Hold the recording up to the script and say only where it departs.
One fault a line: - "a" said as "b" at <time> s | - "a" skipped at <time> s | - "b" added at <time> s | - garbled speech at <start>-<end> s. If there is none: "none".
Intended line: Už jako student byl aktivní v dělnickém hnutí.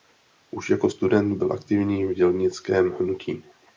none